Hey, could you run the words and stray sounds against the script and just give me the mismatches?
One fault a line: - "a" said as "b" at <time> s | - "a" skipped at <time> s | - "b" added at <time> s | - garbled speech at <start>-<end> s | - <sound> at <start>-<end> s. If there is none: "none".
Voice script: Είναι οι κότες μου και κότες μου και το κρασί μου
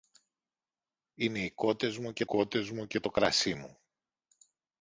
none